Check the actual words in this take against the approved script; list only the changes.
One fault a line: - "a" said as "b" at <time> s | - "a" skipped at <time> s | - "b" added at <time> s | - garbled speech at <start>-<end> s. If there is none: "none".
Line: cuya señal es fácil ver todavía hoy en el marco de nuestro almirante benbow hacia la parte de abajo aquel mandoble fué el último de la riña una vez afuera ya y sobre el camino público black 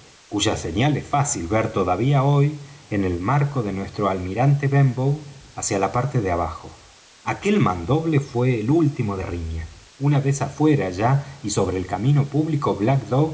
- "la" skipped at 9.2 s